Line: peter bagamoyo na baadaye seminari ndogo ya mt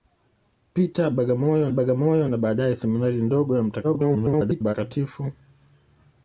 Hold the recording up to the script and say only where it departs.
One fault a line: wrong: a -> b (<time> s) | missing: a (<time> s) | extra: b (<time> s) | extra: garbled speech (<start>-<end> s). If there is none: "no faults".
extra: bagamoyo (1.7 s)
extra: garbled speech (3.8-4.8 s)